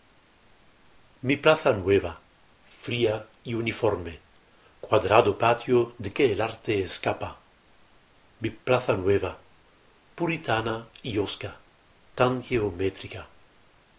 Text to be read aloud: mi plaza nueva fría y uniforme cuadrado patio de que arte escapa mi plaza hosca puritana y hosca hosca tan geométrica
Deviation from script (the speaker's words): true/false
true